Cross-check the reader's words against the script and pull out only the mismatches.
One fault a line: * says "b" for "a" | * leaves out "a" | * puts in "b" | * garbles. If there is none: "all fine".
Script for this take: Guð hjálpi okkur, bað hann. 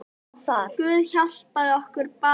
all fine